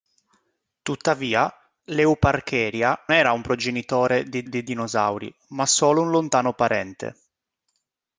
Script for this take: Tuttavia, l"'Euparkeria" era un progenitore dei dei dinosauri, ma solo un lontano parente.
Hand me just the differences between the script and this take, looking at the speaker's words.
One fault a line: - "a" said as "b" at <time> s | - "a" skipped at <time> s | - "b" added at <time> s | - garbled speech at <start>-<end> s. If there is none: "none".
none